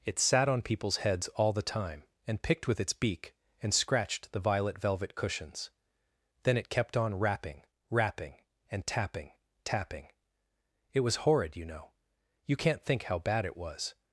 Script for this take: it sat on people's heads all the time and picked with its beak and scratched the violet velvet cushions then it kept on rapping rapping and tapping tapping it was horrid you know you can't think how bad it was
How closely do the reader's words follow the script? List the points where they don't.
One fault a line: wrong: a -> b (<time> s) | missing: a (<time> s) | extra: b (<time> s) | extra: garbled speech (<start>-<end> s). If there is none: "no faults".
no faults